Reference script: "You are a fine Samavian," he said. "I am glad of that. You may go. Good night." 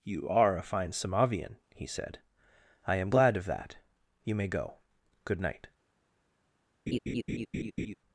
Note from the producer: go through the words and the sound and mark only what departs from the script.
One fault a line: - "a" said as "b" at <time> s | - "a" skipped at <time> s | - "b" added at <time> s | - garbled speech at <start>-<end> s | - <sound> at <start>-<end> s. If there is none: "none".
- laugh at 6.9-7.9 s